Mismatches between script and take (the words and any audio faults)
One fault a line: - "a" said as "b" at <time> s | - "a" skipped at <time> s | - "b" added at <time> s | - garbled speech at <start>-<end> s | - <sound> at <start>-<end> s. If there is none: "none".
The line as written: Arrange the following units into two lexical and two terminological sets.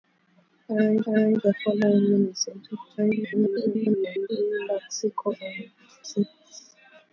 - "arrange" added at 1.1 s
- garbled speech at 3.0-4.3 s
- "two terminological" skipped at 5.7 s